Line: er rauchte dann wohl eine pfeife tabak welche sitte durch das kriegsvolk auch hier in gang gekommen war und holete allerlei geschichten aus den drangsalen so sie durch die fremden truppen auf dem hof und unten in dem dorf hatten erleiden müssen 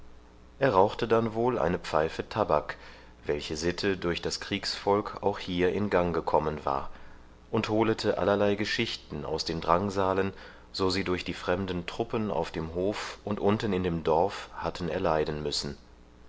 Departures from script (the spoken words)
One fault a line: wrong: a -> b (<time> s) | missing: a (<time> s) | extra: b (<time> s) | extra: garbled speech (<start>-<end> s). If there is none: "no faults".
no faults